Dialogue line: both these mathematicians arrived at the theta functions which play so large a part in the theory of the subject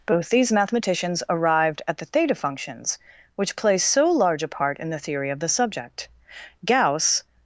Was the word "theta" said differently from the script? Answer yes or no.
no